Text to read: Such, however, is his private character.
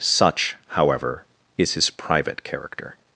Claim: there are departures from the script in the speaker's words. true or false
false